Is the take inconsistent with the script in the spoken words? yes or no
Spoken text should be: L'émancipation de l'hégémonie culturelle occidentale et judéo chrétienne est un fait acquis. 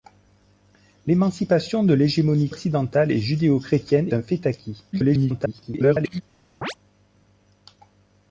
yes